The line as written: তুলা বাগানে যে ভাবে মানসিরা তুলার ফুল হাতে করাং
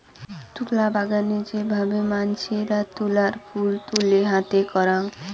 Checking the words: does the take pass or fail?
fail